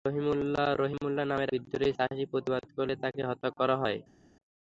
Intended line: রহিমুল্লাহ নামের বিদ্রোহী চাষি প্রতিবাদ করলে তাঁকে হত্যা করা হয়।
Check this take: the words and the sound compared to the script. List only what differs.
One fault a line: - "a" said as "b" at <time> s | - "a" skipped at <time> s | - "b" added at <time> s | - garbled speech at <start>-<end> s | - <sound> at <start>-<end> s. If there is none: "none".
none